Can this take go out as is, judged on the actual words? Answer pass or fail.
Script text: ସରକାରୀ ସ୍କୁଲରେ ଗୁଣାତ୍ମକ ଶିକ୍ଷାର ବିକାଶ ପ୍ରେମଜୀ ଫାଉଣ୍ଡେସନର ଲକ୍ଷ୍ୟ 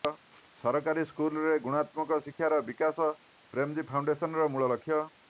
fail